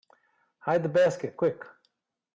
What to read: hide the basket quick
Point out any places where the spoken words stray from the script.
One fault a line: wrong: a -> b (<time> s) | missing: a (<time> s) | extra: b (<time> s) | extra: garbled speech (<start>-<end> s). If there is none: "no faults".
no faults